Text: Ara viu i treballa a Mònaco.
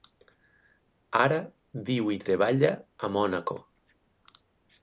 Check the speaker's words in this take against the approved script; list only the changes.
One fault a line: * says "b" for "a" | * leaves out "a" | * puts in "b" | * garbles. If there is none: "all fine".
all fine